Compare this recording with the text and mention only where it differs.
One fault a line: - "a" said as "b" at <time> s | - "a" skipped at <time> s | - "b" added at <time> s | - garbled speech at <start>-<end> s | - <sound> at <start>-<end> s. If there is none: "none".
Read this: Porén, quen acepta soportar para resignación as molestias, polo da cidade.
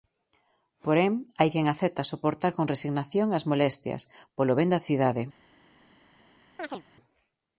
- "hai" added at 1.4 s
- "para" said as "con" at 2.6 s
- "ben" added at 4.6 s
- chirp at 6.6-6.8 s